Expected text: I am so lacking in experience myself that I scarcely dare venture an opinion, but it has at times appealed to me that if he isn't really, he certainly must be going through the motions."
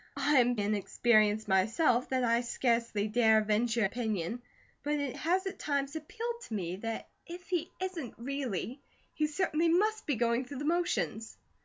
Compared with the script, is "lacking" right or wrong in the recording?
wrong